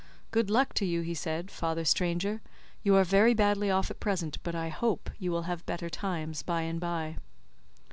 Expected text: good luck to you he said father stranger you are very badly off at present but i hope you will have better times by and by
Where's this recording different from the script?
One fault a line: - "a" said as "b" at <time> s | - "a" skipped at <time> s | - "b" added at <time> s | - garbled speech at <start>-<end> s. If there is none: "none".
none